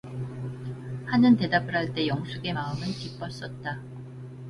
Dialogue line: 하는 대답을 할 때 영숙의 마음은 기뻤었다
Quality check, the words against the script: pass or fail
pass